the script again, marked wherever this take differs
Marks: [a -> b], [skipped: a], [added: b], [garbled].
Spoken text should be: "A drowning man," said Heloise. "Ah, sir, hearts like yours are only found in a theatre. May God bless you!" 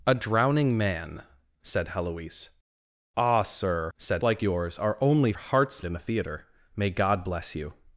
"A drowning man," said Heloise. "Ah, sir, [hearts -> said] like yours are only [found -> hearts] in a theatre. May God bless you!"